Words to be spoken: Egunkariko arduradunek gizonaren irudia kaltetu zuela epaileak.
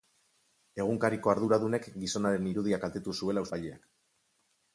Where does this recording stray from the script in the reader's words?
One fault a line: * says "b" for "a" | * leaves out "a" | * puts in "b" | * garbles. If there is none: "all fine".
all fine